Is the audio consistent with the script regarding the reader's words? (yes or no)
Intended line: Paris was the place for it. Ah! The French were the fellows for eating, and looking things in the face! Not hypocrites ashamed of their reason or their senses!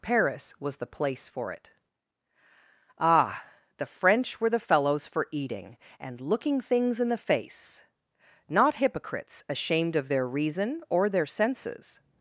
yes